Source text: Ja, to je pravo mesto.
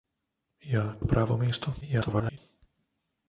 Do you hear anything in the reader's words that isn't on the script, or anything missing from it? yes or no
yes